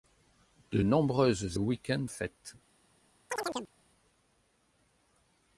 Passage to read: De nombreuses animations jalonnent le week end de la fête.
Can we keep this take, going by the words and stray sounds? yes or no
no